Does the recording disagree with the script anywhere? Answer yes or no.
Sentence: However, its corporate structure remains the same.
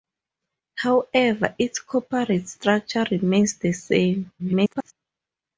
yes